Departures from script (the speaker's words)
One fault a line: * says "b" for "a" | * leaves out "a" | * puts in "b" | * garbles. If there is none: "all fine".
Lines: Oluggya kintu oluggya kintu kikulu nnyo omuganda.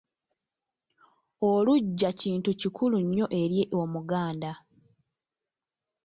* leaves out "oluggya kintu"
* puts in "eri"